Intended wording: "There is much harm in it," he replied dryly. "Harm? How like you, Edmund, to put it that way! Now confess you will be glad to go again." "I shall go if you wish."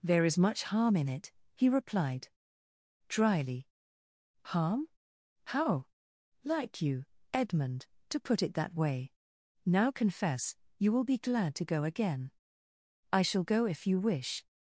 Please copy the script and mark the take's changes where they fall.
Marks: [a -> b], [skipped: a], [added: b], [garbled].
"There is much harm in it," he replied dryly. "Harm? How like you, Edmund, to put it that way! Now confess you will be glad to go again." "I shall go if you wish."